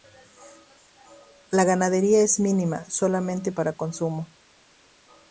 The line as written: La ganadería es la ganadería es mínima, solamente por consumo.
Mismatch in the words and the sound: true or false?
true